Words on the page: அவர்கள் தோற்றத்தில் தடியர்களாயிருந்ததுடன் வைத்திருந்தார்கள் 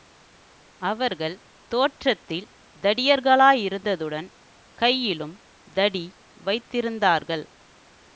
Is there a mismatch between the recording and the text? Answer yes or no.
yes